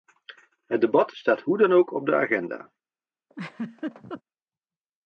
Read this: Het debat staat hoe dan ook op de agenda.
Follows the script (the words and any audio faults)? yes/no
no